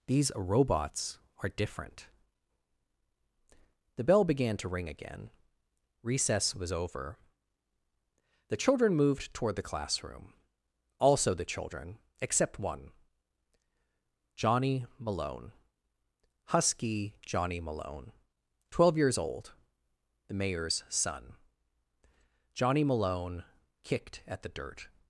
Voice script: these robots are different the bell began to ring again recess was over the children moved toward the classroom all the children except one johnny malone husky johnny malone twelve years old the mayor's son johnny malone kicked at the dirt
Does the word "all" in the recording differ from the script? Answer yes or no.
yes